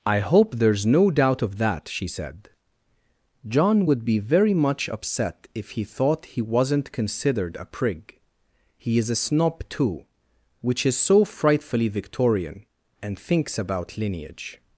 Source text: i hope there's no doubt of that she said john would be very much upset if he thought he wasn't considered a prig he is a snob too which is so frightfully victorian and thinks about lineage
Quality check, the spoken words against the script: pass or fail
pass